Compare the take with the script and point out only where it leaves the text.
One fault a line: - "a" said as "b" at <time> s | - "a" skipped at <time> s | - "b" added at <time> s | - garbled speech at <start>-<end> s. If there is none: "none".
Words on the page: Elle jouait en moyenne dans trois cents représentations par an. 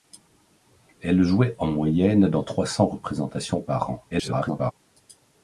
- garbled speech at 4.1-4.7 s